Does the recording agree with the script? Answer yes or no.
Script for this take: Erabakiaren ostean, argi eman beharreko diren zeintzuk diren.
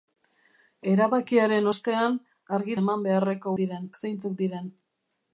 yes